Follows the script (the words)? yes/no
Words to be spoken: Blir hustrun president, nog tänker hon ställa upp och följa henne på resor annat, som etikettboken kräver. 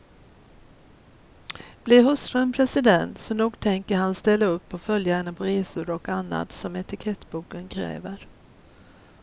no